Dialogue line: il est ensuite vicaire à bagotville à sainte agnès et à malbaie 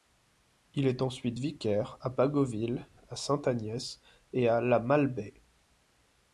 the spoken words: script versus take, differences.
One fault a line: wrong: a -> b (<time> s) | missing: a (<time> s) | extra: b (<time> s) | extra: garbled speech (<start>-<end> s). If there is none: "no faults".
extra: la (4.6 s)